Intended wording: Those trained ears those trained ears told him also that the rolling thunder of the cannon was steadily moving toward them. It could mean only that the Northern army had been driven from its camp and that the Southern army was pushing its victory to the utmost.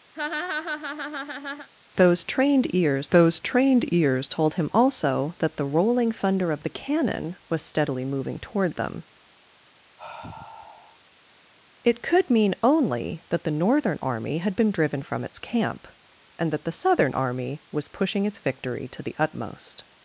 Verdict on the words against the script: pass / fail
pass